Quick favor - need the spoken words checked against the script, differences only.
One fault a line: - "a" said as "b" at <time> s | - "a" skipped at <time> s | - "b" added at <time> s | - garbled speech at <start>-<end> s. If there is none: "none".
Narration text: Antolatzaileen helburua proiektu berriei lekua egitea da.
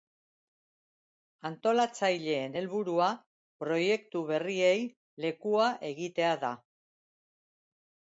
none